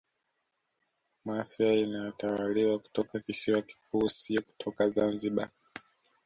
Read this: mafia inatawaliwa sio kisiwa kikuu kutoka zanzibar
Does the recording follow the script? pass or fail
fail